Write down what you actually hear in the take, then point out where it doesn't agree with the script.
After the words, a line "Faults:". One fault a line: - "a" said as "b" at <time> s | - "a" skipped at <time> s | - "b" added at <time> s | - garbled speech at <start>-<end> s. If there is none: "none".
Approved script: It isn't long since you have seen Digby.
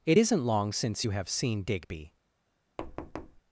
It isn't long since you have seen Digby.
Faults:
none